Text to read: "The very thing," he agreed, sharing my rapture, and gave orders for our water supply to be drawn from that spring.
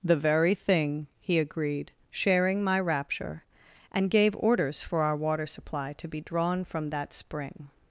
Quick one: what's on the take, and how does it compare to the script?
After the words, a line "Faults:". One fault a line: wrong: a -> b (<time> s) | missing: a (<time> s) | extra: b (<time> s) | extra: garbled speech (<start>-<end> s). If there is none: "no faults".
"The very thing," he agreed, sharing my rapture, and gave orders for our water supply to be drawn from that spring.
Faults:
no faults